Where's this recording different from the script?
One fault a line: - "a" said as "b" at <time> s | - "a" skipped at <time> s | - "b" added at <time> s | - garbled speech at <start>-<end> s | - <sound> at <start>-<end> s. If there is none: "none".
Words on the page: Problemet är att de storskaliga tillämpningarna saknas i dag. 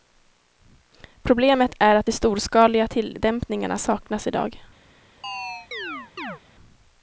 - chirp at 5.2-6.4 s